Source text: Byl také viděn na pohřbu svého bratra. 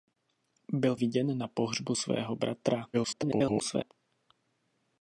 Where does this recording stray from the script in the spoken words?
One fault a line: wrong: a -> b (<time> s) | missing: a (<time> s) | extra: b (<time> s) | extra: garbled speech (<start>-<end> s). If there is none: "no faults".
missing: také (0.9 s)
extra: garbled speech (2.9-3.9 s)